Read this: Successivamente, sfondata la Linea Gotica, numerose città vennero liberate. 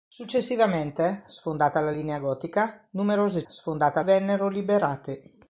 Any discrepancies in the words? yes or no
yes